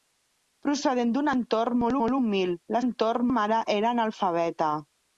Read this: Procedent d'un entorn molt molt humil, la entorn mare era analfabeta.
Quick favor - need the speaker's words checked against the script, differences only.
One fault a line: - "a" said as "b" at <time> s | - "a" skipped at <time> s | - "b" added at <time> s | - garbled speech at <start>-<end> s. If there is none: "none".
none